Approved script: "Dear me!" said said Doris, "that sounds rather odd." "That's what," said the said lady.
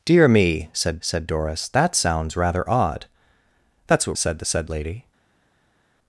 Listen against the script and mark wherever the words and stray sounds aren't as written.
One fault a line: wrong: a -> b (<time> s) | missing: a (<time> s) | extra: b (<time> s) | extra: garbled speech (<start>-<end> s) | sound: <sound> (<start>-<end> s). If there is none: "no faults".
no faults